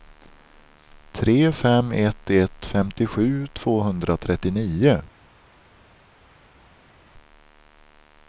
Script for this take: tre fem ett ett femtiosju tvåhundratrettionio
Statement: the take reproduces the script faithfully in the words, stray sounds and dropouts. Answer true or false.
true